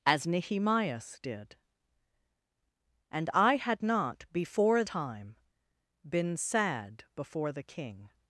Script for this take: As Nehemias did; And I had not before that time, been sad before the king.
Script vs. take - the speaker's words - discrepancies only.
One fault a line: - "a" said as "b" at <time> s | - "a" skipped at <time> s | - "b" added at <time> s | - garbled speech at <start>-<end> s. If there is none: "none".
- "that" skipped at 4.8 s